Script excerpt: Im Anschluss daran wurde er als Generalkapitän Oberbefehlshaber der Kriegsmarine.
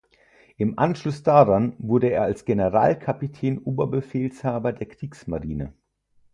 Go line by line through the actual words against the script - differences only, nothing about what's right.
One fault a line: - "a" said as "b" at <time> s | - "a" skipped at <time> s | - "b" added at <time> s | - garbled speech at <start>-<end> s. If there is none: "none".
none